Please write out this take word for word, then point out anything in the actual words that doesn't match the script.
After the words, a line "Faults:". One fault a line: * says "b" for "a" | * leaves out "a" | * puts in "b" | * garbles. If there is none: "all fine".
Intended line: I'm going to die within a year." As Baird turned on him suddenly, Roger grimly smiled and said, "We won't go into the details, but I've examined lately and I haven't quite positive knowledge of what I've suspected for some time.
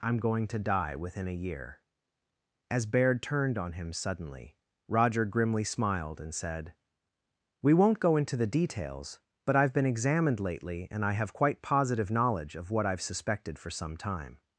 I'm going to die within a year." As Baird turned on him suddenly, Roger grimly smiled and said, "We won't go into the details, but I've been examined lately and I have quite positive knowledge of what I've suspected for some time.
Faults:
* puts in "been"
* says "have" for "haven't"